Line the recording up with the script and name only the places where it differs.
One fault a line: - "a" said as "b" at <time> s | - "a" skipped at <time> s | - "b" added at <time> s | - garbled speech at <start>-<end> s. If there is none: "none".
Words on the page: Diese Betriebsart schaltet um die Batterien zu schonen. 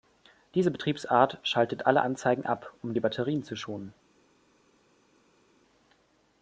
- "alle Anzeigen ab" added at 1.9 s